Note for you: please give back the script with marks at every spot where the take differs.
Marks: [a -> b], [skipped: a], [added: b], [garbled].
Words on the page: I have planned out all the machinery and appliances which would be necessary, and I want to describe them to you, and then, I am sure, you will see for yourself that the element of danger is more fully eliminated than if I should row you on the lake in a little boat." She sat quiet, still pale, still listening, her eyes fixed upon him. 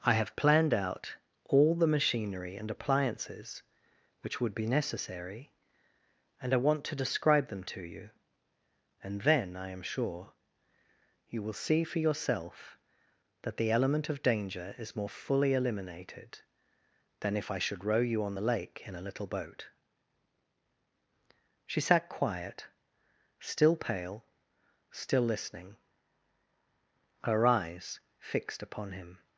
I have planned out all the machinery and appliances which would be necessary, and I want to describe them to you, and then, I am sure, you will see for yourself that the element of danger is more fully eliminated than if I should row you on the lake in a little boat." She sat quiet, still pale, still listening, her eyes fixed upon him.